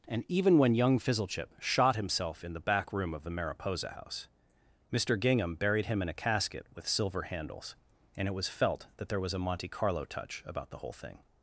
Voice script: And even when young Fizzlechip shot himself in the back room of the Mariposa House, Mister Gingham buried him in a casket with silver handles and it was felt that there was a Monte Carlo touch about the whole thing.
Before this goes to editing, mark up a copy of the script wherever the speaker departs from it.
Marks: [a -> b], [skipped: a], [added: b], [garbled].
And even when young Fizzlechip shot himself in the back room of the Mariposa House, Mister Gingham buried him in a casket with silver handles and it was felt that there was a Monte Carlo touch about the whole thing.